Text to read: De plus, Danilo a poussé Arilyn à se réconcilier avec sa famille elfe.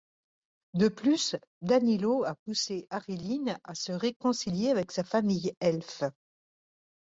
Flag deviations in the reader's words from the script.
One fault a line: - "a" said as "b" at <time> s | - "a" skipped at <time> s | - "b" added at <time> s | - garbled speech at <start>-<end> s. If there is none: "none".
none